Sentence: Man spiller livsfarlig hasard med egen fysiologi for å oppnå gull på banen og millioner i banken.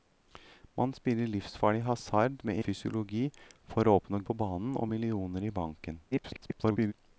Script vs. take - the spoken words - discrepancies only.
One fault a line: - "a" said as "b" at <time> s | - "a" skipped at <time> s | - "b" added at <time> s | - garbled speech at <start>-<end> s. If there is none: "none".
- "egen" skipped at 2.6 s
- "gull" skipped at 4.2 s
- garbled speech at 6.1-6.9 s